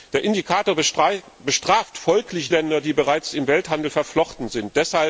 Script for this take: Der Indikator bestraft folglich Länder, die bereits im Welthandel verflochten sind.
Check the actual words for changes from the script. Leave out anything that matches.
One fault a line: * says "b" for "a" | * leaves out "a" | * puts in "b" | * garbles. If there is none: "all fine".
all fine